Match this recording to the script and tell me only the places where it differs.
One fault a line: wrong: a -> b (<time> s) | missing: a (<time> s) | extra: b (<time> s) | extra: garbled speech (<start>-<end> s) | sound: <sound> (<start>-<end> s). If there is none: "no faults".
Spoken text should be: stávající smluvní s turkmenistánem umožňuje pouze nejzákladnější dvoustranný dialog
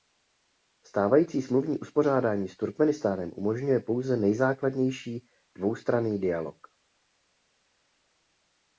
extra: uspořádání (1.8 s)